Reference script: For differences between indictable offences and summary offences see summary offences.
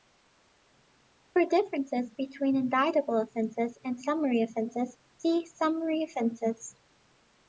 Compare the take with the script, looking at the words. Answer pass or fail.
pass